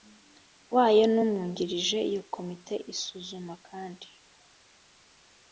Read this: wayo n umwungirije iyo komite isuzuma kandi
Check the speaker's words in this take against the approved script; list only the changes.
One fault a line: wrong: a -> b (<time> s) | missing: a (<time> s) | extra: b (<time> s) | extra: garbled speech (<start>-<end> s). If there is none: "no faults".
no faults